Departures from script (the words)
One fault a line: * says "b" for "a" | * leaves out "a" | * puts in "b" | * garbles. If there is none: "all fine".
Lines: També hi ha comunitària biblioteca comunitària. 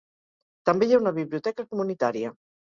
* says "una" for "comunitària"